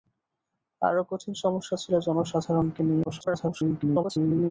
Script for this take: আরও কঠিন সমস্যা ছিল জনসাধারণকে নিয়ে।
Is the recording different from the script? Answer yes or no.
yes